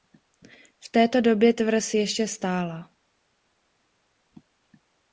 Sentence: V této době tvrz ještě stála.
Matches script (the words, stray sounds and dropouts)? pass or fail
pass